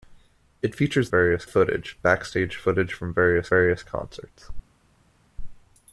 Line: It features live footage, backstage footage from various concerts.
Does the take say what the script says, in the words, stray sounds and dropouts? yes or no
no